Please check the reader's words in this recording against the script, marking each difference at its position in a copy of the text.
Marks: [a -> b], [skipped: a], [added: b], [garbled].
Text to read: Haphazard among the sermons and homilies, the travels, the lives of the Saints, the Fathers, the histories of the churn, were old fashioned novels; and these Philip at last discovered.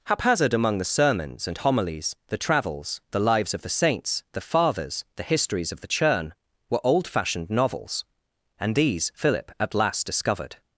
Haphazard among the sermons and homilies, the travels, the lives of the Saints, the Fathers, the histories of the churn, were old fashioned novels; and these Philip at last discovered.